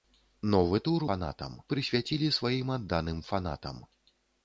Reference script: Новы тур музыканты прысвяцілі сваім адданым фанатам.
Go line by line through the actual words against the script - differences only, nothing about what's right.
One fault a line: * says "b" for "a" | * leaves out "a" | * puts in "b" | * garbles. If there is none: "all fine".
* says "фанатам" for "музыканты"